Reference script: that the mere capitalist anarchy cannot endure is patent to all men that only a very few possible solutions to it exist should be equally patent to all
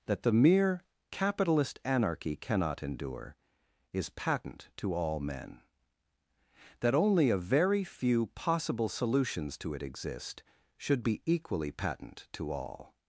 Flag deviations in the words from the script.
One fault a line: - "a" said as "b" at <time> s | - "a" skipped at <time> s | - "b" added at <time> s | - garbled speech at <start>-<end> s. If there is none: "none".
none